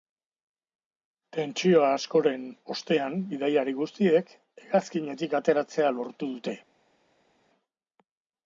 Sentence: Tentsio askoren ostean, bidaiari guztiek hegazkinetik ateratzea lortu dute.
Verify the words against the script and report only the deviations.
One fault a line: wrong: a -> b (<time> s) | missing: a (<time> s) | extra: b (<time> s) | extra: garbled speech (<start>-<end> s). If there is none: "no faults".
no faults